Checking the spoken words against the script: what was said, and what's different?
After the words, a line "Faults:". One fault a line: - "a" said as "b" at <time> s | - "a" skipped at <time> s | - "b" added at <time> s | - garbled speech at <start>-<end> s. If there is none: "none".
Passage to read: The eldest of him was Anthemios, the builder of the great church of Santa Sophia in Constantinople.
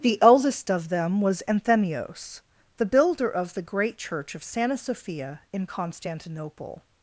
The eldest of them was Anthemios, the builder of the great church of Santa Sophia in Constantinople.
Faults:
- "him" said as "them" at 0.9 s